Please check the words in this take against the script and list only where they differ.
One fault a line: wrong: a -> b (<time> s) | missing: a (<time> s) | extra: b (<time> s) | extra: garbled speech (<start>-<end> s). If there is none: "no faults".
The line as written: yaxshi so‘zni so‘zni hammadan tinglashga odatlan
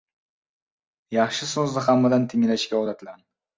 missing: so‘zni (1.9 s)